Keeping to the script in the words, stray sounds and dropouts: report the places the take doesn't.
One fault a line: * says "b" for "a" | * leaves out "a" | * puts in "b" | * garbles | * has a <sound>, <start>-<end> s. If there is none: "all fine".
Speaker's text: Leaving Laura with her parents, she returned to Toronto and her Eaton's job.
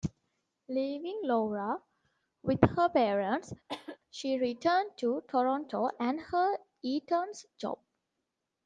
* has a cough, 3.7-4.0 s